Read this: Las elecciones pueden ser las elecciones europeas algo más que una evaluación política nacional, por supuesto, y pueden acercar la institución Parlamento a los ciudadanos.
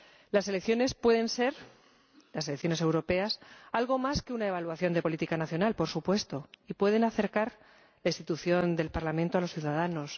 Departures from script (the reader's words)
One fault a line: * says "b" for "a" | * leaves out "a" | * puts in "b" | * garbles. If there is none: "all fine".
* puts in "de"
* puts in "del"